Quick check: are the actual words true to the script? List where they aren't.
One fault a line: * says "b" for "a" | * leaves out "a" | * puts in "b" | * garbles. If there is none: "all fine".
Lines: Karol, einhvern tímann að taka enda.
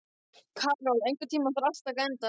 * puts in "þarf allt"